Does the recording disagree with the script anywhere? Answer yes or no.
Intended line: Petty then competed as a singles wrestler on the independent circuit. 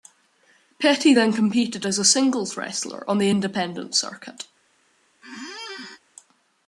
no